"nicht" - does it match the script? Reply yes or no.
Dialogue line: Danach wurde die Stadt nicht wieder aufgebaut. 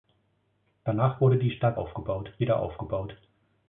no